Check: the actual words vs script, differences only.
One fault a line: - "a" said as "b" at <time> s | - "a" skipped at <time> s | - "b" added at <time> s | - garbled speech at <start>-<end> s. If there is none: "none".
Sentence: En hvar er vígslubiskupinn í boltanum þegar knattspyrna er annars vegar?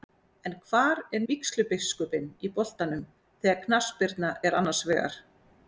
none